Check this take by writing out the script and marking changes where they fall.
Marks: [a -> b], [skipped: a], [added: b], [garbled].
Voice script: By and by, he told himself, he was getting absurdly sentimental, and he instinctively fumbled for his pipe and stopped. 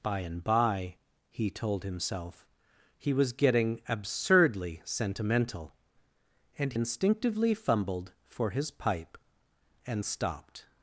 By and by, he told himself, he was getting absurdly sentimental, and [skipped: he] instinctively fumbled for his pipe and stopped.